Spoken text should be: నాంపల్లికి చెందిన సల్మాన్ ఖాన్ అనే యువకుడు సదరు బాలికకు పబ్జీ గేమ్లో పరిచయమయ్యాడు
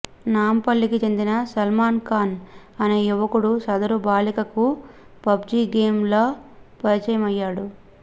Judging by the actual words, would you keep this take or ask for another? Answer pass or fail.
pass